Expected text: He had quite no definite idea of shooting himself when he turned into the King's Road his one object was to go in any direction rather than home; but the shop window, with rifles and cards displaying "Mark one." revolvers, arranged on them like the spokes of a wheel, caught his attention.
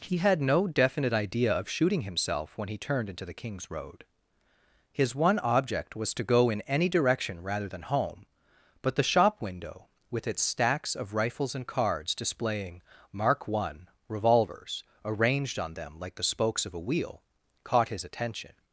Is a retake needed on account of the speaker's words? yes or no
yes